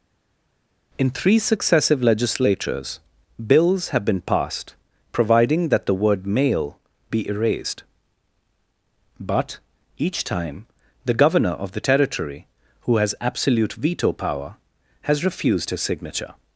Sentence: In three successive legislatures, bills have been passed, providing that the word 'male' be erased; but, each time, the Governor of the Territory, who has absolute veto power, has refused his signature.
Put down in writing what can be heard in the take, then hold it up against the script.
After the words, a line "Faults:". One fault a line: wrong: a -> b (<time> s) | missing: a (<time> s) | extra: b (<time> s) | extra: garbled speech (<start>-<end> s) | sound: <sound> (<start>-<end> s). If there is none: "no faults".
In three successive legislatures, bills have been passed, providing that the word 'male' be erased; but, each time, the Governor of the Territory, who has absolute veto power, has refused his signature.
Faults:
no faults